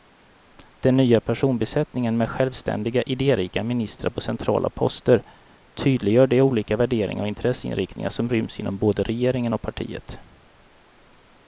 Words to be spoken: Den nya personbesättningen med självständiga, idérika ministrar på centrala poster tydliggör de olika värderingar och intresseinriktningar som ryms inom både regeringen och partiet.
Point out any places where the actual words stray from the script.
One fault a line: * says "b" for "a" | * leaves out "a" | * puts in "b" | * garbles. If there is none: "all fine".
all fine